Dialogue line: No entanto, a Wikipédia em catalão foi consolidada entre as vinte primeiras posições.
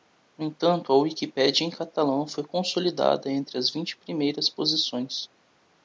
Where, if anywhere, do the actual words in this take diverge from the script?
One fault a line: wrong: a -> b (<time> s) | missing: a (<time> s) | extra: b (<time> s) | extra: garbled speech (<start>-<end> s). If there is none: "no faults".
no faults